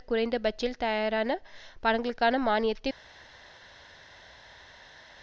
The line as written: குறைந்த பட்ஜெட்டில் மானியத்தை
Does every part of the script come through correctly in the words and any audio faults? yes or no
no